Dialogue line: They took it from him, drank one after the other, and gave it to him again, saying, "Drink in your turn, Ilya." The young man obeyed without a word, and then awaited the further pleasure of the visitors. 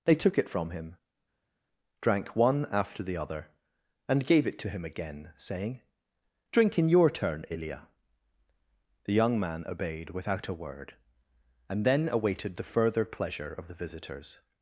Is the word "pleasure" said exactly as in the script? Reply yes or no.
yes